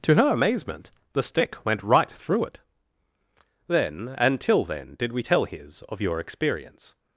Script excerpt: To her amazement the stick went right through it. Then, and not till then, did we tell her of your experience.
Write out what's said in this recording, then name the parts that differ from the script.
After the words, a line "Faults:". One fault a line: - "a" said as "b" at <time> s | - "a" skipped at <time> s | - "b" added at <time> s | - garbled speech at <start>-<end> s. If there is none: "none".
To her amazement the stick went right through it. Then, and till then, did we tell his of your experience.
Faults:
- "not" skipped at 4.4 s
- "her" said as "his" at 5.5 s